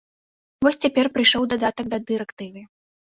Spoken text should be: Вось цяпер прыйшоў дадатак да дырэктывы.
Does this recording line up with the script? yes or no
yes